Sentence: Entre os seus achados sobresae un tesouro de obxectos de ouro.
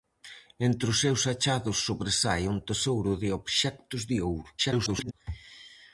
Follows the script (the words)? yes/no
no